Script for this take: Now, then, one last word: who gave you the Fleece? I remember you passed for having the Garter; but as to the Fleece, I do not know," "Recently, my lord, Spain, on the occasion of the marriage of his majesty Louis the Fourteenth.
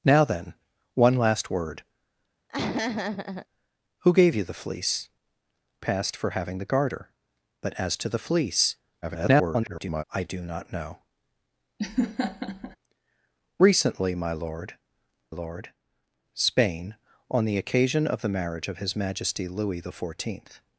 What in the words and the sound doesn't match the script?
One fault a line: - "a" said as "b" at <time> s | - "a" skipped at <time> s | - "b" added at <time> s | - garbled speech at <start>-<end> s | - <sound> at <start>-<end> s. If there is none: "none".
- laugh at 2.5-3.5 s
- "I remember you" skipped at 5.1 s
- garbled speech at 9.0-10.0 s
- laugh at 11.8-12.8 s
- "lord" added at 15.3 s